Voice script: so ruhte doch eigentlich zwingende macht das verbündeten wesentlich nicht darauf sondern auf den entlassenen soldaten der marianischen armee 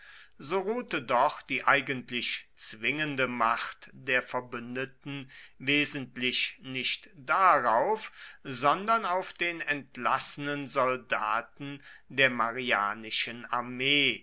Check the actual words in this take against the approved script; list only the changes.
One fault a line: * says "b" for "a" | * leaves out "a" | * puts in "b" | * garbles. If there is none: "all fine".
* puts in "die"
* says "der" for "das"